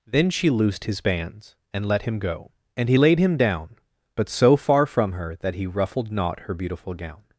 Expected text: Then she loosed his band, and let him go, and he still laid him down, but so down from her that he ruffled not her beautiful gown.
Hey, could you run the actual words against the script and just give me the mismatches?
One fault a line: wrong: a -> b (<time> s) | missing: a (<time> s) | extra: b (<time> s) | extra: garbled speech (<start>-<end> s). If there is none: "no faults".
wrong: band -> bands (1.0 s)
missing: still (3.0 s)
wrong: down -> far (4.6 s)